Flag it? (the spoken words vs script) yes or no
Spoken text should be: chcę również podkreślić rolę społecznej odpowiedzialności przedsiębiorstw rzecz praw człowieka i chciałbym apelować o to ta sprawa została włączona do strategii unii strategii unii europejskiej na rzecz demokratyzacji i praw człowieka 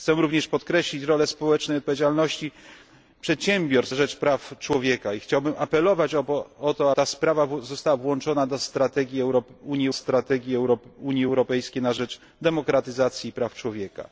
no